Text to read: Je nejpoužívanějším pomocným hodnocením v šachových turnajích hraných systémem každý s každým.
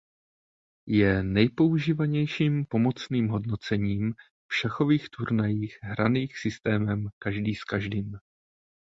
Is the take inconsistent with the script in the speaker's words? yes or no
no